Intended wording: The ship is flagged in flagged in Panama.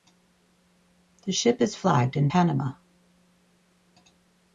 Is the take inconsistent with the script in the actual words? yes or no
yes